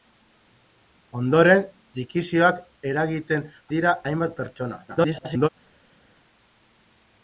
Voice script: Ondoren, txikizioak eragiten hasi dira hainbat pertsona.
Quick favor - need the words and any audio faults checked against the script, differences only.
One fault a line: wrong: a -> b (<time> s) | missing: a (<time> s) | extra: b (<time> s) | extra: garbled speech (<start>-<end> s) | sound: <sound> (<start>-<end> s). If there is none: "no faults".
missing: hasi (3.5 s)
extra: garbled speech (4.9-5.5 s)